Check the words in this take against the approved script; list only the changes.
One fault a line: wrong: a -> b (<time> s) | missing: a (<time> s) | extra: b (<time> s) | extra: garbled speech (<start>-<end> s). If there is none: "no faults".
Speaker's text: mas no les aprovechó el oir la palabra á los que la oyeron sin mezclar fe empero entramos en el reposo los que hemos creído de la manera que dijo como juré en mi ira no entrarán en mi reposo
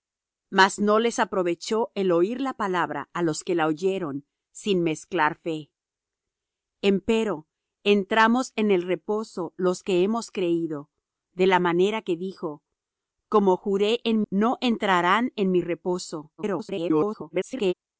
missing: mi ira (14.2 s)
extra: garbled speech (16.4-17.7 s)